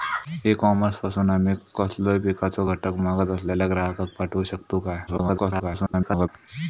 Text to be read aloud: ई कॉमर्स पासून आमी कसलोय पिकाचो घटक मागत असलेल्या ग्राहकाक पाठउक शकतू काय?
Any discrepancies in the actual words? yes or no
yes